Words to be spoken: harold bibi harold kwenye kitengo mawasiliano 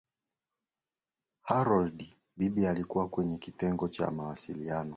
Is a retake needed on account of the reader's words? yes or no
yes